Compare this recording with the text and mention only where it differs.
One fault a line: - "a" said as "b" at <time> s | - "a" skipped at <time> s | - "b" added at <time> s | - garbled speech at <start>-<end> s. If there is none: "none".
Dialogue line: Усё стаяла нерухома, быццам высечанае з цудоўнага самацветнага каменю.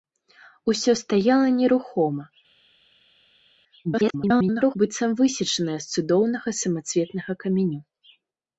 - garbled speech at 3.8-4.8 s